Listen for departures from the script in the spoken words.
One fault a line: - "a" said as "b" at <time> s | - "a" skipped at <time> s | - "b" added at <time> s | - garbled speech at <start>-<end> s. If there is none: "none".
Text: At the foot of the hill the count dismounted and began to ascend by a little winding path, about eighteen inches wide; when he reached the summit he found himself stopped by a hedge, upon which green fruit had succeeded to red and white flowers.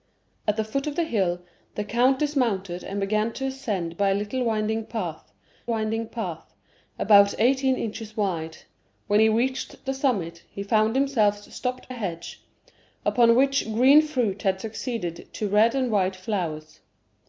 - "winding path" added at 5.7 s
- "by" skipped at 11.9 s